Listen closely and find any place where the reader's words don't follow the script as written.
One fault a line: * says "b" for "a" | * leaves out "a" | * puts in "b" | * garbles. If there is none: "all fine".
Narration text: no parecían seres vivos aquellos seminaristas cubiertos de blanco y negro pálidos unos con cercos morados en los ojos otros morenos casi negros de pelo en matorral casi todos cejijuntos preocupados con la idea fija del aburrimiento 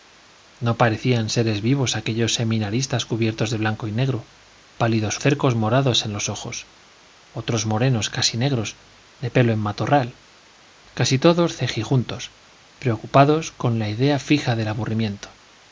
* leaves out "unos con"